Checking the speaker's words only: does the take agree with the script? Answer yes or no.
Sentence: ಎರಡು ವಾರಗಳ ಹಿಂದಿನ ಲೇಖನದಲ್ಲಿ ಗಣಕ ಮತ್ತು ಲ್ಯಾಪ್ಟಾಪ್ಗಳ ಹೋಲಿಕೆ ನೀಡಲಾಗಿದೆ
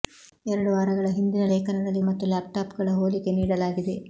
no